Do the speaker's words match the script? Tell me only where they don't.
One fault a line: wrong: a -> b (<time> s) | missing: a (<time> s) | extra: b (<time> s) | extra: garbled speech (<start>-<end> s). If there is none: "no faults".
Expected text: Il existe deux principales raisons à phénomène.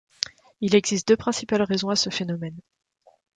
extra: ce (1.9 s)